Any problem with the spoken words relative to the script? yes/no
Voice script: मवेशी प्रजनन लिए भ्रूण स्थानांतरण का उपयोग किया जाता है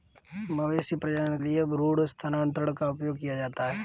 no